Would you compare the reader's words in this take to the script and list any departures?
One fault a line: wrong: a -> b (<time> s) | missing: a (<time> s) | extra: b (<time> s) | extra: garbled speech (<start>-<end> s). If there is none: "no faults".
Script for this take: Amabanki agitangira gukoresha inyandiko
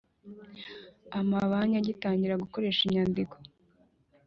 no faults